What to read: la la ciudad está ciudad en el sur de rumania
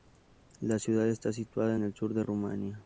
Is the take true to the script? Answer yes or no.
no